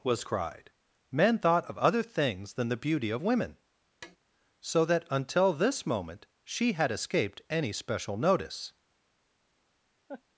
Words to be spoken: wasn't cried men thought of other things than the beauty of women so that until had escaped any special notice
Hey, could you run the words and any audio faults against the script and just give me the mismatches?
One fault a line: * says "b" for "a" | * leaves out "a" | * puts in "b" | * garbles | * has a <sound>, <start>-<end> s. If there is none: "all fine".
* says "was" for "wasn't"
* has a tap, 4.0-4.2 s
* puts in "this moment she"
* has a laugh, 10.1-10.2 s